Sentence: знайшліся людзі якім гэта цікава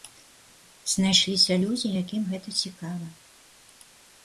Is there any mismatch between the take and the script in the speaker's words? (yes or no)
no